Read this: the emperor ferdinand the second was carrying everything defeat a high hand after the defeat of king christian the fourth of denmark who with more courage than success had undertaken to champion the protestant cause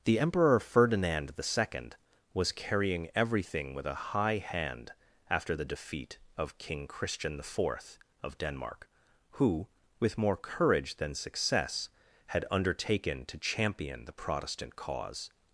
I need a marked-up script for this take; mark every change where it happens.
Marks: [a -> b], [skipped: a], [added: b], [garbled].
the emperor ferdinand the second was carrying everything [defeat -> with] a high hand after the defeat of king christian the fourth of denmark who with more courage than success had undertaken to champion the protestant cause